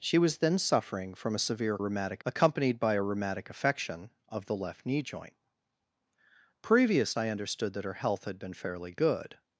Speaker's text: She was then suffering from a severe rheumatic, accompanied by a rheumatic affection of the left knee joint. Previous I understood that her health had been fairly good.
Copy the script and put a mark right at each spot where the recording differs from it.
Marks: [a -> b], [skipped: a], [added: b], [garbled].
She was then suffering from a severe rheumatic, accompanied by a rheumatic affection of the left knee joint. Previous I understood that her health had been fairly good.